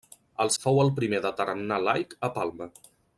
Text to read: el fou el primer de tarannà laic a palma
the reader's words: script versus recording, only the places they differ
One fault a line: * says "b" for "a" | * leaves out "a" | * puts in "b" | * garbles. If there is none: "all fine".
all fine